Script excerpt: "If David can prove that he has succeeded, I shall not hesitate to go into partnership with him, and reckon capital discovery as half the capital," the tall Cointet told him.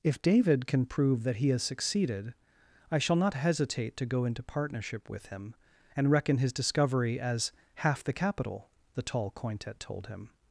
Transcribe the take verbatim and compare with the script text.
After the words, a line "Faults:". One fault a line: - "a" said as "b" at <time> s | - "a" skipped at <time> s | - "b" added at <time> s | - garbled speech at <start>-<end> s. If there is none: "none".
"If David can prove that he has succeeded, I shall not hesitate to go into partnership with him, and reckon his discovery as half the capital," the tall Cointet told him.
Faults:
- "capital" said as "his" at 6.4 s